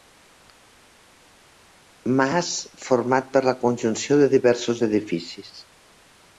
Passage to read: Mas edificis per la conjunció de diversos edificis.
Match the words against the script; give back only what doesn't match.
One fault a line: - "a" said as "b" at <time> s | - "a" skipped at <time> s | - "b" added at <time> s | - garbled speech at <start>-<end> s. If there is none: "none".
- "edificis" said as "format" at 2.9 s